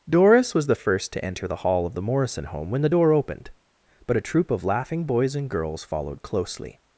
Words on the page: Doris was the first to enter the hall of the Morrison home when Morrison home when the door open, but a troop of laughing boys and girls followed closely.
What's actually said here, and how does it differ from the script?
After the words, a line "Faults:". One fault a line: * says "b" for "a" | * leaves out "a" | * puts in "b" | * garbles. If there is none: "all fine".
Doris was the first to enter the hall of the Morrison home when the door opened, but a troop of laughing boys and girls followed closely.
Faults:
* leaves out "Morrison home when"
* says "opened" for "open"